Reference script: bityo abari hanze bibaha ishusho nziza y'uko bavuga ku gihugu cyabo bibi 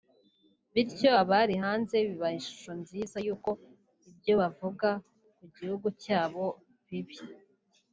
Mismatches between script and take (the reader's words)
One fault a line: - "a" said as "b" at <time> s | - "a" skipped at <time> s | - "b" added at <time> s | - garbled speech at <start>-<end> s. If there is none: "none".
- "ibyo" added at 4.1 s